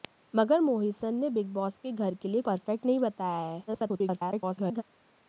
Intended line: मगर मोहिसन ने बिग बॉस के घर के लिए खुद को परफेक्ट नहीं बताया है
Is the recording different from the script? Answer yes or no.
yes